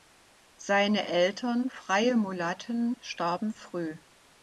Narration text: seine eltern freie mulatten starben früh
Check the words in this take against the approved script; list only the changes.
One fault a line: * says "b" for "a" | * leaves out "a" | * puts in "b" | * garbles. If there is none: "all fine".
all fine